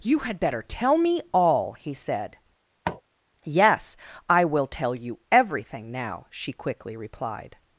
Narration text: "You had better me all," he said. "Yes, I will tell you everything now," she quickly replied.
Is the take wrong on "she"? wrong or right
right